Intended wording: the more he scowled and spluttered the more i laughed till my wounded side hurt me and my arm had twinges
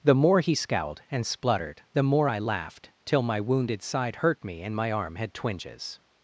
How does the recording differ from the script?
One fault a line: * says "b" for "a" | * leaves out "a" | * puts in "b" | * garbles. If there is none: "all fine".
all fine